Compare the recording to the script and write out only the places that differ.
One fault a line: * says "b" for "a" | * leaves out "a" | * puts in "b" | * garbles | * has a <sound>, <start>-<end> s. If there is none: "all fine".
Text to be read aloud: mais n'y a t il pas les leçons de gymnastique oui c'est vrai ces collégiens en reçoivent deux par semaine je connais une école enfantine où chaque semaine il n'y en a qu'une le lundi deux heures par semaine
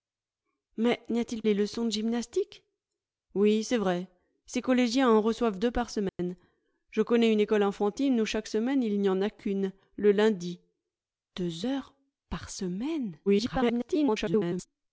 * leaves out "pas"
* has a dropout, 6.1-6.2 s
* garbles